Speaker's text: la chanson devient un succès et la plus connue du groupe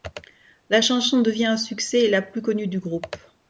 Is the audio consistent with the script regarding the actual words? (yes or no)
yes